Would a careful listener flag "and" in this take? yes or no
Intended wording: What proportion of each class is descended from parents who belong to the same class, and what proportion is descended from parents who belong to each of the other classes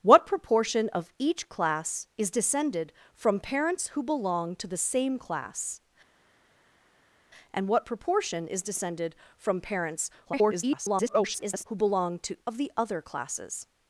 no